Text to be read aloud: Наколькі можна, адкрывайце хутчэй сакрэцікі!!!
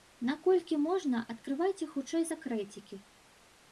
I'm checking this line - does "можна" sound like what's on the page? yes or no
yes